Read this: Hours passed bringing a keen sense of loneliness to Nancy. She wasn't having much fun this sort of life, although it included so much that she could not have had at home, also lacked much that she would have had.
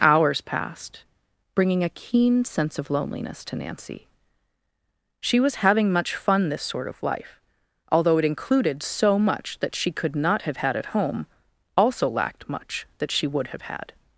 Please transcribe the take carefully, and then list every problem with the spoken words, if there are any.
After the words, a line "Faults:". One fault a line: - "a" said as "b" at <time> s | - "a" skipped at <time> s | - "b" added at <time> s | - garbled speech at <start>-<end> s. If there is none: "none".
Hours passed bringing a keen sense of loneliness to Nancy. She was having much fun this sort of life, although it included so much that she could not have had at home, also lacked much that she would have had.
Faults:
- "wasn't" said as "was" at 5.4 s